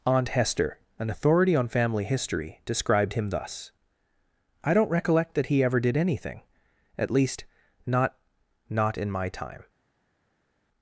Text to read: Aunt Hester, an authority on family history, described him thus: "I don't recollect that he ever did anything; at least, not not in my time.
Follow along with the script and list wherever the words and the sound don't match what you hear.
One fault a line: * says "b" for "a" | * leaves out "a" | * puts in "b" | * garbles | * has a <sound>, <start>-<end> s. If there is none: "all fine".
all fine